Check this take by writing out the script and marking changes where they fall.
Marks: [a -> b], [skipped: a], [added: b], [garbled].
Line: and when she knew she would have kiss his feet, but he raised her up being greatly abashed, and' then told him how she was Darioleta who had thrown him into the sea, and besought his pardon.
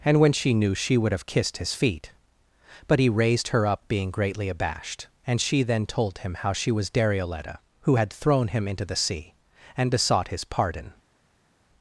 and when she knew she would have [kiss -> kissed] his feet, but he raised her up being greatly abashed, and' [added: she] then told him how she was Darioleta who had thrown him into the sea, and besought his pardon.